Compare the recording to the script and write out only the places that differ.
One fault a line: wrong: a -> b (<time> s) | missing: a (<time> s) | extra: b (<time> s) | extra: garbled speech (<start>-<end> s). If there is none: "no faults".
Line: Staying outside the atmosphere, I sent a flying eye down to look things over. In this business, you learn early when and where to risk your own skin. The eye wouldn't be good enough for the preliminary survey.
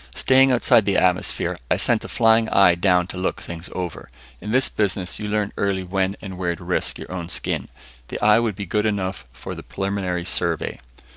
wrong: wouldn't -> would (8.4 s)